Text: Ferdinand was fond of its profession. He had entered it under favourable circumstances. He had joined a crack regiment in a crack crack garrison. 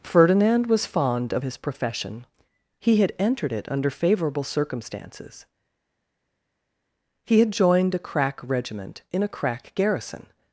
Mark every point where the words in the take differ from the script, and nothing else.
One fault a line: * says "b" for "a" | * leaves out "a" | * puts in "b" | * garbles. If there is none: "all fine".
* says "his" for "its"
* leaves out "crack"